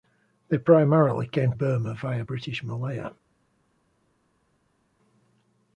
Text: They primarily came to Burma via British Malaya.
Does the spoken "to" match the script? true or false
false